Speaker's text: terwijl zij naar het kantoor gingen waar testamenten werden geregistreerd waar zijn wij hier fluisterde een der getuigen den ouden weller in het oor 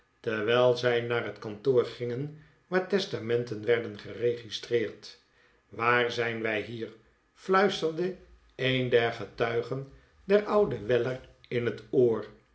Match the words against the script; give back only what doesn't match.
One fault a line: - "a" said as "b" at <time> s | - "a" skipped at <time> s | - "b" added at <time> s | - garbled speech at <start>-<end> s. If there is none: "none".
none